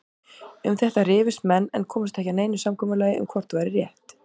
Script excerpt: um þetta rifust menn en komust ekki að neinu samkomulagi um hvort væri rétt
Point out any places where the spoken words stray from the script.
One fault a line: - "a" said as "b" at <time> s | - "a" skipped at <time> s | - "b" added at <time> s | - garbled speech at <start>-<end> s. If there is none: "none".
none